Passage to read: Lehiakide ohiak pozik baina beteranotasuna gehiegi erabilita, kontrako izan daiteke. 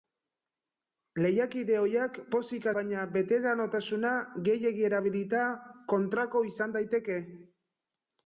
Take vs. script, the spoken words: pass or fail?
pass